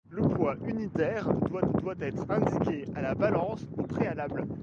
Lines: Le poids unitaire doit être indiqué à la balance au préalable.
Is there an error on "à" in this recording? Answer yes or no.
no